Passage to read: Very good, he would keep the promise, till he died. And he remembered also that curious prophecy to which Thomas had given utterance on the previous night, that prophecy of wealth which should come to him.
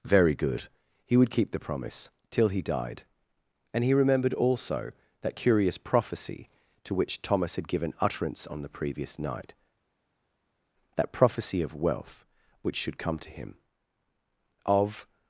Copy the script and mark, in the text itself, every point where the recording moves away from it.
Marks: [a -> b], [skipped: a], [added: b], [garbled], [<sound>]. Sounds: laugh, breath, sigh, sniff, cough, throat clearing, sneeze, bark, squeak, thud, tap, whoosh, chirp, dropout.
Very good, he would keep the promise, till he died. And he remembered also that curious prophecy to which Thomas had given utterance on the previous night, that prophecy of wealth which should come to him. [added: Of]